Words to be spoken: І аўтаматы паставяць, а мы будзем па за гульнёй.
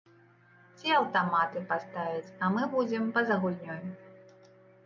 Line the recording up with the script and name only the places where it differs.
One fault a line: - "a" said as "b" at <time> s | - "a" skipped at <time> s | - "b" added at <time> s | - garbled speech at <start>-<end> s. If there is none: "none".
- "І" said as "Ці" at 0.8 s